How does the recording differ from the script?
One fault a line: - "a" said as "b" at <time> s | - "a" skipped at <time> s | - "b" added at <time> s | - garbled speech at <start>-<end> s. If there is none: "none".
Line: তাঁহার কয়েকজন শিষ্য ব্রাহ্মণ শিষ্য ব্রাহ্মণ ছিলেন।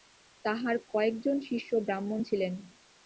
- "শিষ্য ব্রাহ্মণ" skipped at 2.2 s